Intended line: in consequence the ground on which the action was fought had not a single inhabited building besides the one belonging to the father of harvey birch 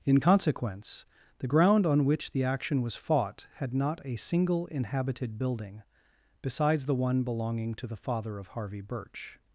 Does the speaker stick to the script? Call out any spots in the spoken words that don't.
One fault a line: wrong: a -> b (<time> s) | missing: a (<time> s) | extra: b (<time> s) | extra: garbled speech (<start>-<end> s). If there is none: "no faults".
no faults